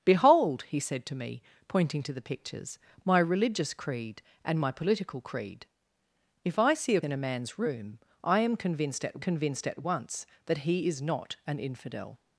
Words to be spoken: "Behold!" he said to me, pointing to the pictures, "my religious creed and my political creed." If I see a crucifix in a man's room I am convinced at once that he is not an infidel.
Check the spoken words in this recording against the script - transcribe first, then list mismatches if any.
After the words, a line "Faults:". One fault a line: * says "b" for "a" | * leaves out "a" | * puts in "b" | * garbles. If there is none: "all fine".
"Behold!" he said to me, pointing to the pictures, "my religious creed and my political creed." If I see a in a man's room I am convinced at convinced at once that he is not an infidel.
Faults:
* leaves out "crucifix"
* puts in "convinced at"